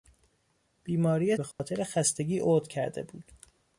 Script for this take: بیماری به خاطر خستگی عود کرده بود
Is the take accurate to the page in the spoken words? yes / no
yes